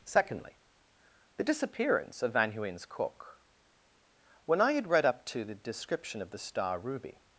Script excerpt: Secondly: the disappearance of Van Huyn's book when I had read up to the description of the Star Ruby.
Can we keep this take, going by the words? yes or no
no